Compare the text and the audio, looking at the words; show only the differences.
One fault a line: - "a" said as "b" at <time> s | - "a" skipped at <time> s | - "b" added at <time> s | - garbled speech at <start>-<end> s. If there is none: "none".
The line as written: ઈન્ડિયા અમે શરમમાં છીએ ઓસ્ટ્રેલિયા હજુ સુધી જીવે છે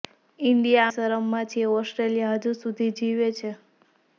- "અમે" skipped at 0.9 s